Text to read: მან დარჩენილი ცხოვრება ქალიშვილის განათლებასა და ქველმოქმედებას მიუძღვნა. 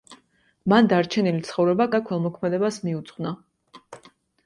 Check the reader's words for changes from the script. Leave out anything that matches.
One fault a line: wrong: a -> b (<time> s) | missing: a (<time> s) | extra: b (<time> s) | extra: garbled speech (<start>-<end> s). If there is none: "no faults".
missing: ქალიშვილის განათლებასა (1.9 s)